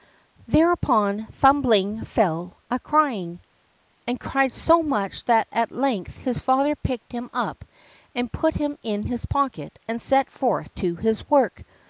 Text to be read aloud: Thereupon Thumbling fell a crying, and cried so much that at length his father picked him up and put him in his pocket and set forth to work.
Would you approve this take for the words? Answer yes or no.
no